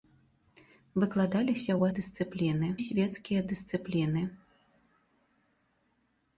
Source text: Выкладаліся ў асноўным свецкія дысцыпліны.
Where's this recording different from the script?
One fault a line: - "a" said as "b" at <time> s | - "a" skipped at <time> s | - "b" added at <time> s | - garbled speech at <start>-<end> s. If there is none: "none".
- "асноўным" said as "дысцыпліны" at 2.0 s